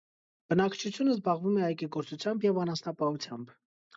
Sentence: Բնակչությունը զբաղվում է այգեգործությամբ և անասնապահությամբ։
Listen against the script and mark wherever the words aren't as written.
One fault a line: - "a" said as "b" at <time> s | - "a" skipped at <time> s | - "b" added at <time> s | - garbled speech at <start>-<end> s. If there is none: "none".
none